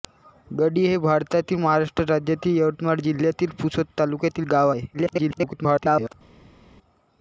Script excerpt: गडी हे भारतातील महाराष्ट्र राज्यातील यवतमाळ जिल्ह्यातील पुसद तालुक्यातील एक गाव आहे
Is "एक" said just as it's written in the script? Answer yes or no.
no